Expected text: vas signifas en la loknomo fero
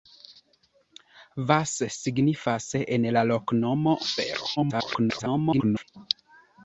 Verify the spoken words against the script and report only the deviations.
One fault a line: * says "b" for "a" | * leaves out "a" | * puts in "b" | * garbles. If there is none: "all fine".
* garbles